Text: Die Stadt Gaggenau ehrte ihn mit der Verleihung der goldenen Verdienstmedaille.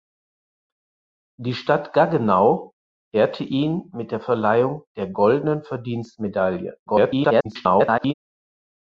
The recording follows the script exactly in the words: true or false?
false